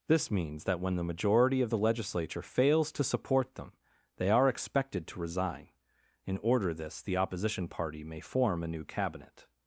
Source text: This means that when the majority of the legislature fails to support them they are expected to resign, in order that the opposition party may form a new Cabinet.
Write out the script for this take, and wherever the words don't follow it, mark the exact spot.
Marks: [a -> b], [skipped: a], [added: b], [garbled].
This means that when the majority of the legislature fails to support them they are expected to resign, in order [that -> this] the opposition party may form a new Cabinet.